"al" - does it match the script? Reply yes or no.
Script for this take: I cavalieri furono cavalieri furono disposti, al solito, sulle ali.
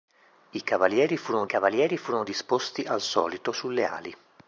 yes